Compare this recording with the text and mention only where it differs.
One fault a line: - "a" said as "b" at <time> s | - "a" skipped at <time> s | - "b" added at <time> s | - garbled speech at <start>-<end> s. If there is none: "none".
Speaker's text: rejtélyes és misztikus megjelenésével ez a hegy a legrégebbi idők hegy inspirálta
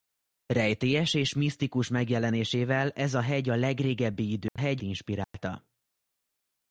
none